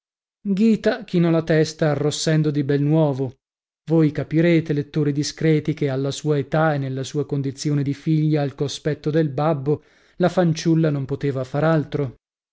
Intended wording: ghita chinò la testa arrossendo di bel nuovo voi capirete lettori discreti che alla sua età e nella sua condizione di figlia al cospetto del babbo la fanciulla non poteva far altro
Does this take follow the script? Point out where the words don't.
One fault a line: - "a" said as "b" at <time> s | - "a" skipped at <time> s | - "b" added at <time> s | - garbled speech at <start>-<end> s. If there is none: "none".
none